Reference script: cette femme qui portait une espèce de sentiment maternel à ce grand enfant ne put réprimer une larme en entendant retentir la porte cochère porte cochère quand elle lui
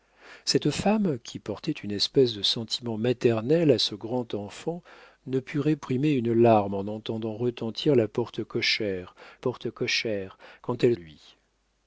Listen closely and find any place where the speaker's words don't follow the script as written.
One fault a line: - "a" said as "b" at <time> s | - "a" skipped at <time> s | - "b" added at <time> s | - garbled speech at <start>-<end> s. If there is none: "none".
none